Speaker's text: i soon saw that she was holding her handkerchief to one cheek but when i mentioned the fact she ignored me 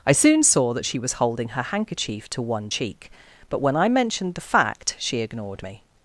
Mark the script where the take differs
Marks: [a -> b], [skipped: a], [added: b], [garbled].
i soon saw that she was holding her handkerchief to one cheek but when i mentioned the fact she ignored me